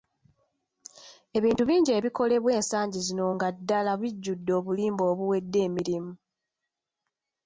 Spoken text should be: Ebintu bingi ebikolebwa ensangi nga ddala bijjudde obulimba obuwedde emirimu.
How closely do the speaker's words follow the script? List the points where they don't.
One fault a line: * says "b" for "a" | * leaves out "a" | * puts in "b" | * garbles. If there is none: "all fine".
* puts in "zino"